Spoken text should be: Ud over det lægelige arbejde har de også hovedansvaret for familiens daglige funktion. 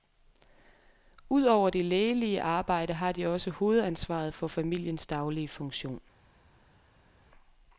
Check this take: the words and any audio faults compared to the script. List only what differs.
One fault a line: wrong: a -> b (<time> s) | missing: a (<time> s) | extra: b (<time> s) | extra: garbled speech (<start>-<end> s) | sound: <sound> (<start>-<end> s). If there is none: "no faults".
no faults